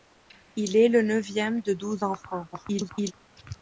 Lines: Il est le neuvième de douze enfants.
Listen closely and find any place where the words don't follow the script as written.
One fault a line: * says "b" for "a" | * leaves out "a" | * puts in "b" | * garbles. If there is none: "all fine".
* garbles